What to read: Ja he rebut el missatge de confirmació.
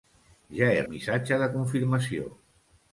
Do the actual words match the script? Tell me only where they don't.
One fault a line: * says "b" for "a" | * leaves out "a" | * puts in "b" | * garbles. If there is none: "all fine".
* leaves out "rebut"